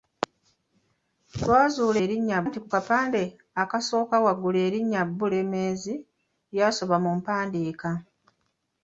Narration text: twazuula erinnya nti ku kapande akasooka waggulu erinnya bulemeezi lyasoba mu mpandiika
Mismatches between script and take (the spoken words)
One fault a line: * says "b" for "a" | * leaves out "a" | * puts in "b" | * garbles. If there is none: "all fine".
all fine